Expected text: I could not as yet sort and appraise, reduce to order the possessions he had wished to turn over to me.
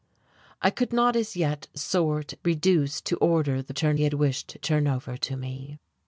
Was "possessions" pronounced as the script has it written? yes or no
no